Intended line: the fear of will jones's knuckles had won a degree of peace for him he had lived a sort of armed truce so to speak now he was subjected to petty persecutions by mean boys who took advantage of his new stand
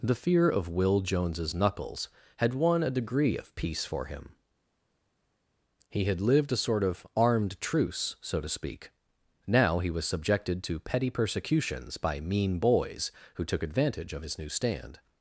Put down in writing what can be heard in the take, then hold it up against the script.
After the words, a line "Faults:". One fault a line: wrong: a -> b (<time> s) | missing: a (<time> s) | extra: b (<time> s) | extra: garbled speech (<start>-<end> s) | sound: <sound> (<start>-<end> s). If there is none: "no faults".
the fear of will jones's knuckles had won a degree of peace for him he had lived a sort of armed truce so to speak now he was subjected to petty persecutions by mean boys who took advantage of his new stand
Faults:
no faults